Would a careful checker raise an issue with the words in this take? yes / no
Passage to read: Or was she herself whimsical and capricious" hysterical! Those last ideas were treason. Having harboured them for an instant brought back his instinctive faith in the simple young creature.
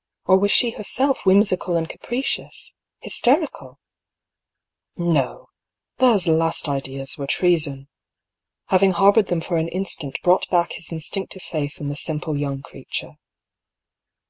yes